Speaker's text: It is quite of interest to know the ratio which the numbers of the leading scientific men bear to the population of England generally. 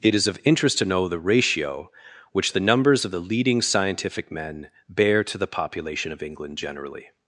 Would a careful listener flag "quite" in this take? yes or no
yes